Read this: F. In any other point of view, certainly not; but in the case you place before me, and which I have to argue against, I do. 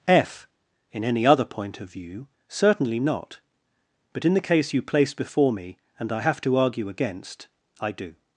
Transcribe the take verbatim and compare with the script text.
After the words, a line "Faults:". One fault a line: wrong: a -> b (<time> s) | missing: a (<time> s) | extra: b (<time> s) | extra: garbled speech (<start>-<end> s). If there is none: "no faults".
F. In any other point of view, certainly not; but in the case you place before me, and I have to argue against, I do.
Faults:
missing: which (6.1 s)